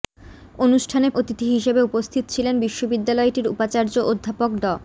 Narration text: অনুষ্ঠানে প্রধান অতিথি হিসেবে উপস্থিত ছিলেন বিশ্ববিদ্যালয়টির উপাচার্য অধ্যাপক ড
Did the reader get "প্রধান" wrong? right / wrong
wrong